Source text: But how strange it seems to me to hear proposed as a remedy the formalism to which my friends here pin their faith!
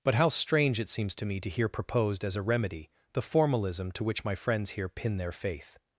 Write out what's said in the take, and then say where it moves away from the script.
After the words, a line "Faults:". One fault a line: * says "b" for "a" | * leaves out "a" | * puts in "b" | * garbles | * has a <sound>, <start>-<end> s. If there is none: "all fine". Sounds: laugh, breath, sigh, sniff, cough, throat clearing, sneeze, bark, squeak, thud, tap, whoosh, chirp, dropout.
But how strange it seems to me to hear proposed as a remedy the formalism to which my friends here pin their faith!
Faults:
all fine